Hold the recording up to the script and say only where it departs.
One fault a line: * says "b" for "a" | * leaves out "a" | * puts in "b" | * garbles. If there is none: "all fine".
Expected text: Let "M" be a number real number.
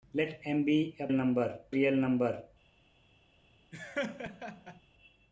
all fine